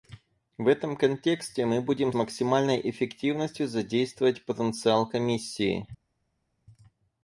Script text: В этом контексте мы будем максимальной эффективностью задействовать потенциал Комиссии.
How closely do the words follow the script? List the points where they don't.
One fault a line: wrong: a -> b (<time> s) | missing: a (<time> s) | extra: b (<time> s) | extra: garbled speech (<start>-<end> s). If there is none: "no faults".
no faults